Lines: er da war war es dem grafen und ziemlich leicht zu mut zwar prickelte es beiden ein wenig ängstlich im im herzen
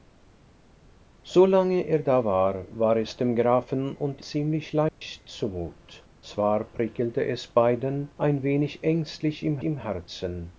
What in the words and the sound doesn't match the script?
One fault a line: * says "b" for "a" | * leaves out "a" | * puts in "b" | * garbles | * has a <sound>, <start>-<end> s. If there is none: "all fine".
* has a dropout, 4.9-5.0 s